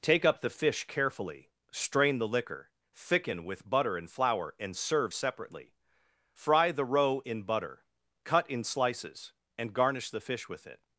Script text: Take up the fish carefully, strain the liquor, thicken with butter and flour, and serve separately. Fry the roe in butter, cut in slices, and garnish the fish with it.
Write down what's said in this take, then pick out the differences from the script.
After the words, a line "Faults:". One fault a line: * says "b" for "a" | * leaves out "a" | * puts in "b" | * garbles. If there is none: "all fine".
Take up the fish carefully, strain the liquor, thicken with butter and flour, and serve separately. Fry the roe in butter, cut in slices, and garnish the fish with it.
Faults:
all fine